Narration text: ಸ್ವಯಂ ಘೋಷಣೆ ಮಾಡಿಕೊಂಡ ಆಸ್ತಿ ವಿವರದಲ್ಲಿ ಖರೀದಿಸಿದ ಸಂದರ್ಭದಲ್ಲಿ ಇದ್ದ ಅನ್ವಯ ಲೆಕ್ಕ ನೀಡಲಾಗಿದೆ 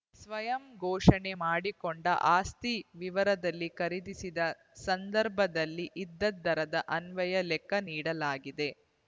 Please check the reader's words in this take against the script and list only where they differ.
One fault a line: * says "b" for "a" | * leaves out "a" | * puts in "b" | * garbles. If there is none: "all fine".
* puts in "ದರದ"